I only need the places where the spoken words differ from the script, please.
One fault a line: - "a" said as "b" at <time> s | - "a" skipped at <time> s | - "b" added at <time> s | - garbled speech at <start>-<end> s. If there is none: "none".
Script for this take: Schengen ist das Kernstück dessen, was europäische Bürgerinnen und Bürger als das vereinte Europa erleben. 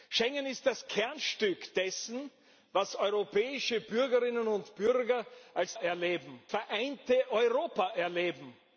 - "das" said as "erleben" at 5.8 s